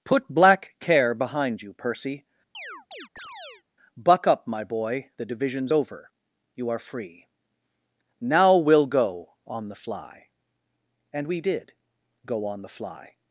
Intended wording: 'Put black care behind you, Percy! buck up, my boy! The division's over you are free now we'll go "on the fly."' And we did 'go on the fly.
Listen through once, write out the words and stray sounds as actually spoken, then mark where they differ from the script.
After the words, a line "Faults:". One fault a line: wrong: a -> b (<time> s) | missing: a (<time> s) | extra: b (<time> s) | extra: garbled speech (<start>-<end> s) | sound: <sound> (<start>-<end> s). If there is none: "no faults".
'Put black care behind you, Percy! buck up, my boy! The division's over you are free now we'll go "on the fly."' And we did 'go on the fly.
Faults:
sound: chirp (2.5-3.6 s)